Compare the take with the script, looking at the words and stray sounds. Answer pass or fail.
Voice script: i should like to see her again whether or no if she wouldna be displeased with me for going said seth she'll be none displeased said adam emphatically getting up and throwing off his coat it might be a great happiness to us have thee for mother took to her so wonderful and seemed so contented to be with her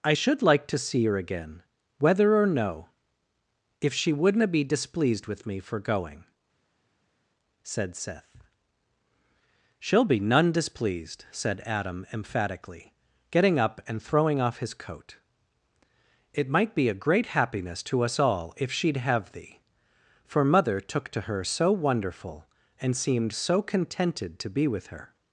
fail